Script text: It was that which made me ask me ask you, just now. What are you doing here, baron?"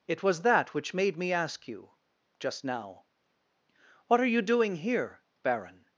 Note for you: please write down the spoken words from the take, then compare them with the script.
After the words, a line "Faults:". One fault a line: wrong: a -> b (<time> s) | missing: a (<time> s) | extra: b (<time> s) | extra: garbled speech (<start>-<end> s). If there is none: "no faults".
It was that which made me ask you, just now. What are you doing here, baron?"
Faults:
missing: me ask (1.7 s)